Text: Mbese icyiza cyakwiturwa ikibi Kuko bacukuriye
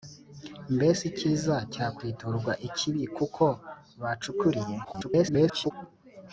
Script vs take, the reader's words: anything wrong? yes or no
yes